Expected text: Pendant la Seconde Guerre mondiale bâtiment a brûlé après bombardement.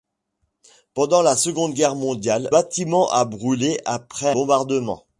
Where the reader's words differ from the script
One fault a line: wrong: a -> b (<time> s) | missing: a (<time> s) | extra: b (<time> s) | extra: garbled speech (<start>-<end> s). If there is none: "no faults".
no faults